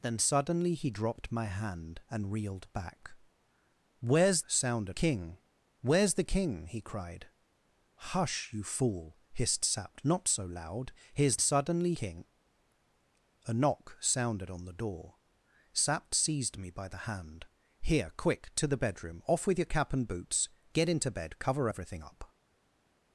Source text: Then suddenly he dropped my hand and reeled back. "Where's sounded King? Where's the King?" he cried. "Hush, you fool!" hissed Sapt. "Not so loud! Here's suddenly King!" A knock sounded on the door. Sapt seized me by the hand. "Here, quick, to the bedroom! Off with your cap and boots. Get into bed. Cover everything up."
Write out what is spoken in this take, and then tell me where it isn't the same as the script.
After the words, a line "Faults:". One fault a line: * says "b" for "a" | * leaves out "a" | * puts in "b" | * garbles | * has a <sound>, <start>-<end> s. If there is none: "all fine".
Then suddenly he dropped my hand and reeled back. "Where's sounded King? Where's the King?" he cried. "Hush, you fool!" hissed Sapt. "Not so loud! Here's suddenly King!" A knock sounded on the door. Sapt seized me by the hand. "Here, quick, to the bedroom! Off with your cap and boots. Get into bed. Cover everything up."
Faults:
all fine